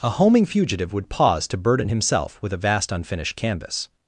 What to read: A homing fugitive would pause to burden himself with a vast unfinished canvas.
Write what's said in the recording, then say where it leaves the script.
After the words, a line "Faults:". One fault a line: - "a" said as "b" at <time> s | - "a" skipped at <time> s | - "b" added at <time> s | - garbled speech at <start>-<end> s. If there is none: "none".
A homing fugitive would pause to burden himself with a vast unfinished canvas.
Faults:
none